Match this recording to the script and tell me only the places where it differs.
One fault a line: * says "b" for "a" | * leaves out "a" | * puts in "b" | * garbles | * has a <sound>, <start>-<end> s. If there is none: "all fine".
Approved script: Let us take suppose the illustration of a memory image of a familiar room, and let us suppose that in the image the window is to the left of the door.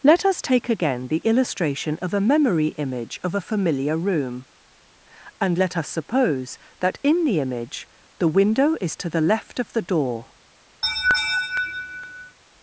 * says "again" for "suppose"
* has a laugh, 10.8-12.4 s